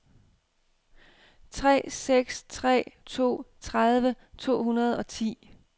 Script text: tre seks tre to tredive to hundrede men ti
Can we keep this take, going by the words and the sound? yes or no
no